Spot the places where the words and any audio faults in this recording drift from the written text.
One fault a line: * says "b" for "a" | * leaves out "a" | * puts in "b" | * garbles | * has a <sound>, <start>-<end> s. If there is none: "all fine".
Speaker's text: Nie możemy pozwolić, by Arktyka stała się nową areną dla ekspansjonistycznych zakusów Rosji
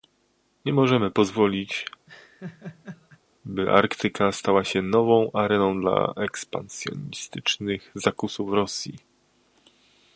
* has a laugh, 2.1-3.2 s